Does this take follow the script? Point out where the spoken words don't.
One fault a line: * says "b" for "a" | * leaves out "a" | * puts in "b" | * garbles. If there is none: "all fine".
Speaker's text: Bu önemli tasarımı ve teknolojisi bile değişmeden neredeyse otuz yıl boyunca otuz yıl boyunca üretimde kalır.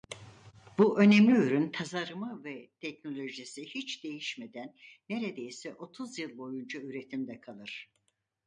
* puts in "ürün"
* says "hiç" for "bile"
* leaves out "otuz yıl boyunca"